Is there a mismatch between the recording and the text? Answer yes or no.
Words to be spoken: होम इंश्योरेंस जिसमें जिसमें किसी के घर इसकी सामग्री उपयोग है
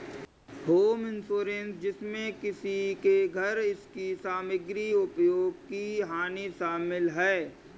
yes